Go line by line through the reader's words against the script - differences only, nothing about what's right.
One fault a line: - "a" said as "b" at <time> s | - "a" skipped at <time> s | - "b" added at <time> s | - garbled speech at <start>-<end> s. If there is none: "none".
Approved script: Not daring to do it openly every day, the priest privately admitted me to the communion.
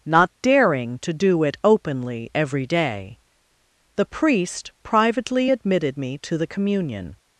none